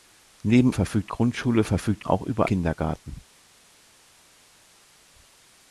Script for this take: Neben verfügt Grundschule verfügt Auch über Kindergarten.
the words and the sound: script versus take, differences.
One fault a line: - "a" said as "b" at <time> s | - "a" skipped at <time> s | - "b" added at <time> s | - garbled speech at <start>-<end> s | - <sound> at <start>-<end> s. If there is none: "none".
none